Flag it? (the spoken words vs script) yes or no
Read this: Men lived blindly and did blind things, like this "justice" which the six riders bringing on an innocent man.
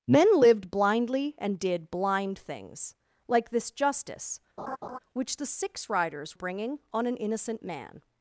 no